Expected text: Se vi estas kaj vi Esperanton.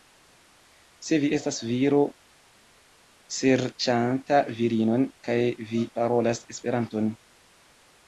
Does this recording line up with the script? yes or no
no